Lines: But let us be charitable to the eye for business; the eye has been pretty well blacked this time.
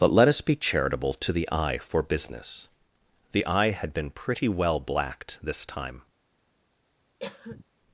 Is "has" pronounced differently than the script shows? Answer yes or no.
yes